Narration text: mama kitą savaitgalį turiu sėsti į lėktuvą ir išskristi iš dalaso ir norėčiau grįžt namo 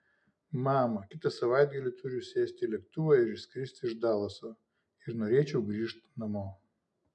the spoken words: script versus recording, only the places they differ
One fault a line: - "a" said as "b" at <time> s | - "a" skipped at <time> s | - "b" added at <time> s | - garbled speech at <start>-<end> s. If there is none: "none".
none